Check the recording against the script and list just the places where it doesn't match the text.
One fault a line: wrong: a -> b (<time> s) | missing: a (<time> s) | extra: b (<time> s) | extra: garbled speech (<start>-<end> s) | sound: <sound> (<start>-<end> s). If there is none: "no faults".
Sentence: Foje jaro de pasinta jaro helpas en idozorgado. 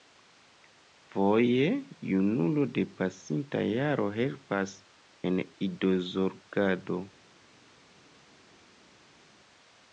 wrong: jaro -> junulo (2.1 s)